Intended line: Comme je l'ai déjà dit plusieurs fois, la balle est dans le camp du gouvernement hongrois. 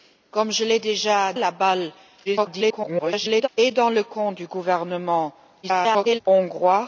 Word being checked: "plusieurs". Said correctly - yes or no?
no